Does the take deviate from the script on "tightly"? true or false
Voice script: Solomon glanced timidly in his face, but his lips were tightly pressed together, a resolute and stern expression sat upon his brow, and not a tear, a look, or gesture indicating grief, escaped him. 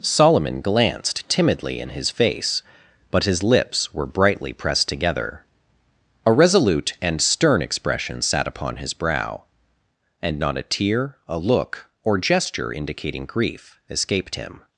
true